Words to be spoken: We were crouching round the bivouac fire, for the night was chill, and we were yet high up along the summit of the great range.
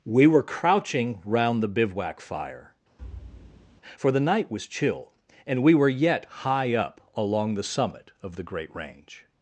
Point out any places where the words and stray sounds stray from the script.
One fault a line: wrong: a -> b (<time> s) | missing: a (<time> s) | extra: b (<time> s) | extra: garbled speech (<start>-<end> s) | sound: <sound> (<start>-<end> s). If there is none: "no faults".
sound: thud (3.0-3.8 s)